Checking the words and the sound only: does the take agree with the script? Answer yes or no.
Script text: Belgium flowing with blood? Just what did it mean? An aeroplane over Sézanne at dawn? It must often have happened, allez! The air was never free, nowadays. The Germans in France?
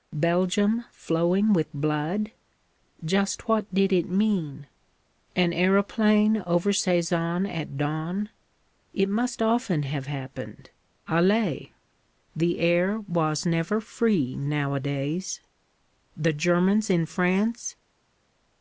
yes